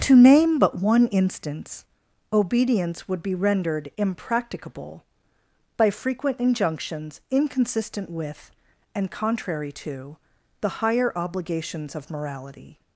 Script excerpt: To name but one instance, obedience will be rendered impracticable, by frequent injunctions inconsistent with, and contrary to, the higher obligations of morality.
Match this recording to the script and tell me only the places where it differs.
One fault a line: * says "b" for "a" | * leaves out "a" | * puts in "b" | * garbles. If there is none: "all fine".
* says "would" for "will"